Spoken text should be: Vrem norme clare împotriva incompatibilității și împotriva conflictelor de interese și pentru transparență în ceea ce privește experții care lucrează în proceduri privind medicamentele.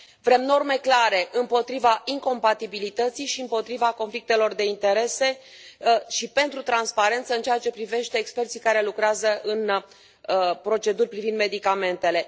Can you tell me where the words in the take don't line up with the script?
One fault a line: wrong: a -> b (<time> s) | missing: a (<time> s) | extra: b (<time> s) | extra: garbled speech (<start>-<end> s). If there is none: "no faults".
no faults